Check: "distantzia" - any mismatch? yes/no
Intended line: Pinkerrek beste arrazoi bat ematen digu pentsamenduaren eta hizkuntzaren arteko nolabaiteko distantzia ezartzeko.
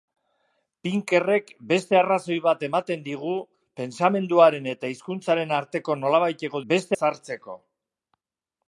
yes